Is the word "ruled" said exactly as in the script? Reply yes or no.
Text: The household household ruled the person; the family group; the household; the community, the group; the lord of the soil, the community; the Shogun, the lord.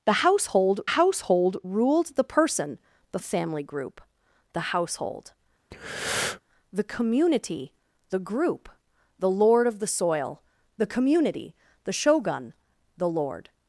yes